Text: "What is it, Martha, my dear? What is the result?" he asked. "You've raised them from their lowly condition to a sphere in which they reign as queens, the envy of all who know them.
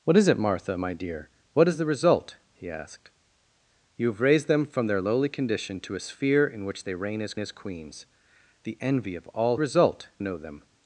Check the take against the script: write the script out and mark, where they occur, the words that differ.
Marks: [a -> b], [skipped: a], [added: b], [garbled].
"What is it, Martha, my dear? What is the result?" he asked. "You've raised them from their lowly condition to a sphere in which they reign as [added: as] queens, the envy of all [who -> result] know them.